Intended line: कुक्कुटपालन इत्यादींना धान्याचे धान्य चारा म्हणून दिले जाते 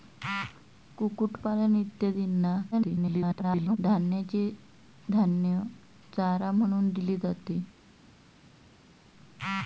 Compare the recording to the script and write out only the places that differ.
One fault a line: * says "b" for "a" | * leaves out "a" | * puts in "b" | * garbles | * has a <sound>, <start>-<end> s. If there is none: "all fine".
* garbles